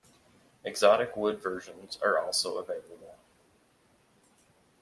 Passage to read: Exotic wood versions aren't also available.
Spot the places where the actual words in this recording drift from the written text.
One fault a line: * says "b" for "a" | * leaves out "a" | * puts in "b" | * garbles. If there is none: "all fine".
* says "are" for "aren't"